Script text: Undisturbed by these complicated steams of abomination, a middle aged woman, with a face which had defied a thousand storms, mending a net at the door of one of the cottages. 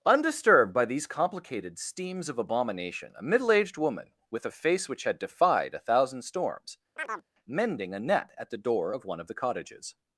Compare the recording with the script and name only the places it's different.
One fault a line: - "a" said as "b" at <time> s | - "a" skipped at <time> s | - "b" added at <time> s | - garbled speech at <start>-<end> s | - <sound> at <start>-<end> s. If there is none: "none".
- chirp at 7.0-7.3 s